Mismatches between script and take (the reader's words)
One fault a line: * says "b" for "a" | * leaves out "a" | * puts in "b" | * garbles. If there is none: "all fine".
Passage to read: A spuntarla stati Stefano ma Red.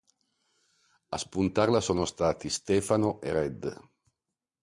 * puts in "sono"
* says "e" for "ma"